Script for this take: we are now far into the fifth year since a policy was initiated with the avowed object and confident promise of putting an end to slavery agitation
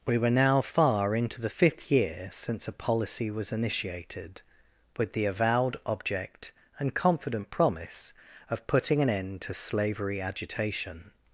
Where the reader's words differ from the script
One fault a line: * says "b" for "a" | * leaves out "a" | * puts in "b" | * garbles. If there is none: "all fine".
* says "were" for "are"